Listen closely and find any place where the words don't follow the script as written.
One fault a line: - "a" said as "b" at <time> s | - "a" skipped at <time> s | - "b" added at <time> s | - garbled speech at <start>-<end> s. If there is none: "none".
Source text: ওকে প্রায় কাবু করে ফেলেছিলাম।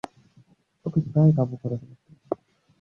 none